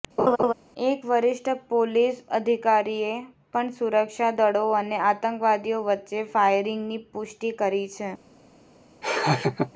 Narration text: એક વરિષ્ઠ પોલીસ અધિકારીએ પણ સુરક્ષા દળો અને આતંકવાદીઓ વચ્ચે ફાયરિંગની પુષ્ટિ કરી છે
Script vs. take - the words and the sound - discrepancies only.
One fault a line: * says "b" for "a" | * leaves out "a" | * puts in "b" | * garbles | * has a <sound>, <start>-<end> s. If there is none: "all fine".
* has a laugh, 0.2-0.5 s
* has a laugh, 9.0-9.7 s